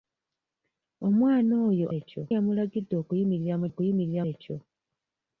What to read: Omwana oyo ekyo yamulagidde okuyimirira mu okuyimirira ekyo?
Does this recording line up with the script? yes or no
yes